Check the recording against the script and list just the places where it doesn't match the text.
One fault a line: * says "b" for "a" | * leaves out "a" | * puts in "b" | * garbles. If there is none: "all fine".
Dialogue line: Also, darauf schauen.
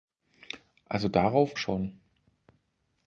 all fine